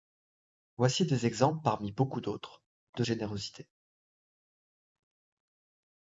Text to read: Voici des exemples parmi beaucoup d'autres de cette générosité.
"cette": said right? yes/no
no